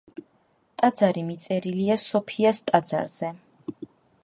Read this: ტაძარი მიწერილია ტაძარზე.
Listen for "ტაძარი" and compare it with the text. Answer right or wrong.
right